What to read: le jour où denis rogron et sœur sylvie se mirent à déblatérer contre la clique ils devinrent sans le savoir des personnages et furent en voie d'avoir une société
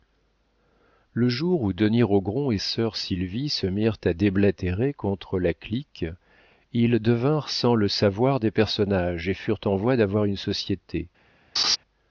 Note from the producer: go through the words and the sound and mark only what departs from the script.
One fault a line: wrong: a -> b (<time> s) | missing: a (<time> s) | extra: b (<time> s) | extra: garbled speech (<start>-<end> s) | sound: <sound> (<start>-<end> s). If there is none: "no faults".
sound: laugh (11.6-11.8 s)